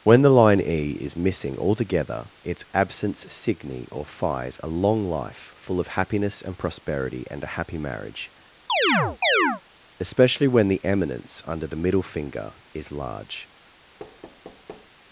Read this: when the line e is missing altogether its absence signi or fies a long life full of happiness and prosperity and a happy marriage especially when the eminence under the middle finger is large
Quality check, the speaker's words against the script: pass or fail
pass